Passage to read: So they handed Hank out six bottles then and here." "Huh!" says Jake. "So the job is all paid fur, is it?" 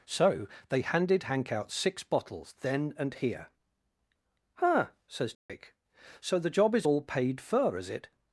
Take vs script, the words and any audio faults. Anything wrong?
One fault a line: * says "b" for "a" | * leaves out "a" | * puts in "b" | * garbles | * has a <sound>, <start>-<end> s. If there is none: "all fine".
* has a dropout, 5.3-5.5 s